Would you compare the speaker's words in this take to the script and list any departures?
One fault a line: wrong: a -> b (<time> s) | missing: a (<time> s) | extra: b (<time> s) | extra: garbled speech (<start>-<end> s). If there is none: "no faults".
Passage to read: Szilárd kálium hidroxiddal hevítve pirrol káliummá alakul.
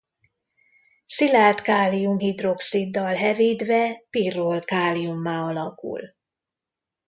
no faults